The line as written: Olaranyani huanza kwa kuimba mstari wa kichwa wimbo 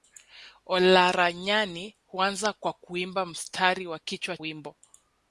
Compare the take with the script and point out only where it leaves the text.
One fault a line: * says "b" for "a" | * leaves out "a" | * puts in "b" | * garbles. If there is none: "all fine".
all fine